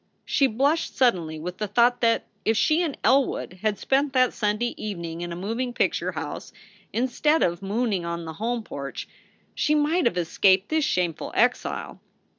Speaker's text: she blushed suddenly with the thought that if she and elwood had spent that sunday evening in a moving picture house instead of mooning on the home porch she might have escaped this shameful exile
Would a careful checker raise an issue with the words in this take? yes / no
no